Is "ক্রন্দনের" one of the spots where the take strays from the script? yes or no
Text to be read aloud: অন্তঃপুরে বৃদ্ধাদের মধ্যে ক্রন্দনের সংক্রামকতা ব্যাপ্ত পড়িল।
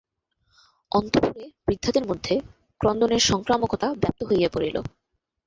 no